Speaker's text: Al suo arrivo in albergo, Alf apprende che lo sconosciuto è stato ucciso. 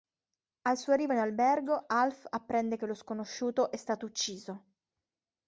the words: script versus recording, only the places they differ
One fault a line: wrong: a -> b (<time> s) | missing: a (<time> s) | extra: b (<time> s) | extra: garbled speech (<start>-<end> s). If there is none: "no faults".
no faults